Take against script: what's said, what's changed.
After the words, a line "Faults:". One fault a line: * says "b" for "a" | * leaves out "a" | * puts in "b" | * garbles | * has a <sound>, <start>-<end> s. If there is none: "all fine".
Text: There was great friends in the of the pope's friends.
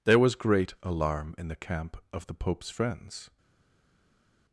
There was great alarm in the camp of the pope's friends.
Faults:
* says "alarm" for "friends"
* puts in "camp"